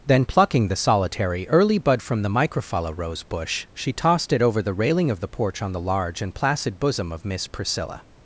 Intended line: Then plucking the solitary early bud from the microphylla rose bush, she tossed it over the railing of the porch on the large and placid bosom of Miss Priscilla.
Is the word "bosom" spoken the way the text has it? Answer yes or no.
yes